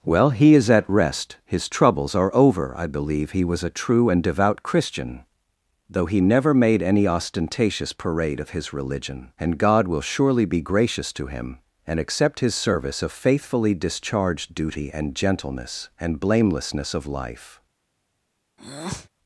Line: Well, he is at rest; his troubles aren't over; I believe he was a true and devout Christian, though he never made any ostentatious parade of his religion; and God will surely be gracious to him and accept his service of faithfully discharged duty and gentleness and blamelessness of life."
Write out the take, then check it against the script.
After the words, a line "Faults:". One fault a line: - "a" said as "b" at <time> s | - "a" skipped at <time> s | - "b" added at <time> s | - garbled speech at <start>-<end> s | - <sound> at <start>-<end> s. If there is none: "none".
Well, he is at rest; his troubles are over; I believe he was a true and devout Christian, though he never made any ostentatious parade of his religion; and God will surely be gracious to him and accept his service of faithfully discharged duty and gentleness and blamelessness of life."
Faults:
- "aren't" said as "are" at 2.1 s
- breath at 18.6-19.1 s